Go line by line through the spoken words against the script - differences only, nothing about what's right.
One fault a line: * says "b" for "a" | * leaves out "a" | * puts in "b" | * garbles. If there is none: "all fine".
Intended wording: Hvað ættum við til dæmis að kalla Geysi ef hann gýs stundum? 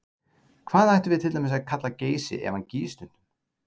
all fine